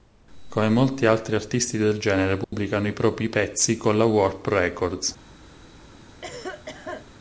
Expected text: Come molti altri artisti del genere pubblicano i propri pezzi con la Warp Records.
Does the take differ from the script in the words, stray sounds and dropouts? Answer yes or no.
yes